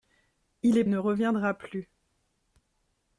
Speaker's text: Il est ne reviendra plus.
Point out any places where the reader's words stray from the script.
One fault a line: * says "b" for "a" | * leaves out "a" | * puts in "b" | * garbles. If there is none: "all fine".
all fine